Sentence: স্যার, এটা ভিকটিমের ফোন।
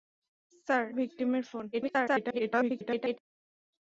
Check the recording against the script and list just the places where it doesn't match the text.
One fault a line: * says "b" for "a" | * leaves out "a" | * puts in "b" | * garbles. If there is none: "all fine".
* leaves out "এটা"
* garbles